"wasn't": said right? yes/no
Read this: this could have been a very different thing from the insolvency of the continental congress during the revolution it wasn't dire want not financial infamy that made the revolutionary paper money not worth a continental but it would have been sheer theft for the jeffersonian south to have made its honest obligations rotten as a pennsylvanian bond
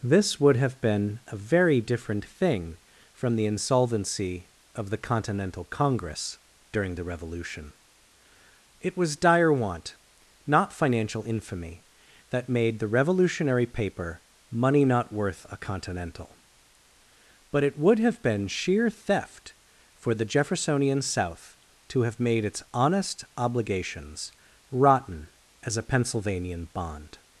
no